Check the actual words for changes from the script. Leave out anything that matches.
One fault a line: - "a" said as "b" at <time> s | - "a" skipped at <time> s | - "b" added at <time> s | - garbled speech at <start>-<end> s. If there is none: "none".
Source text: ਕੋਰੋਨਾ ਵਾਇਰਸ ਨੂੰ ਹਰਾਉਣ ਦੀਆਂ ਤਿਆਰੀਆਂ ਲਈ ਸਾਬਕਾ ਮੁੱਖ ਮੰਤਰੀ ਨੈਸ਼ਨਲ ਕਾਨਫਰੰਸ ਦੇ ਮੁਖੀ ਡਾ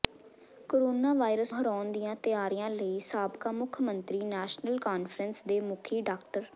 - "ਨੂੰ" skipped at 1.5 s